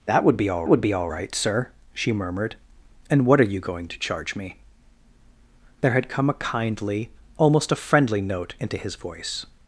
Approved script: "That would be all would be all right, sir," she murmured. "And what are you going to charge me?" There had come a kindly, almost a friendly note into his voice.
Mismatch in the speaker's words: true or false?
false